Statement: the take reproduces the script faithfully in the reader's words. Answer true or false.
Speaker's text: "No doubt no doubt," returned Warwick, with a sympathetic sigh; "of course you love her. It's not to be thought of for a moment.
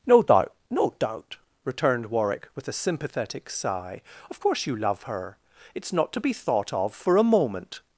true